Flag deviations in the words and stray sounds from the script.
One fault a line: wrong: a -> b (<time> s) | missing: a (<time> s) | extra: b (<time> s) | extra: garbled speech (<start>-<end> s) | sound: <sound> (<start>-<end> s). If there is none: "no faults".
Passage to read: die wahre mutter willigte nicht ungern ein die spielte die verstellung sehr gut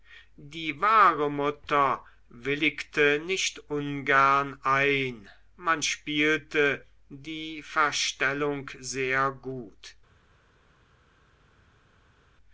wrong: die -> man (5.6 s)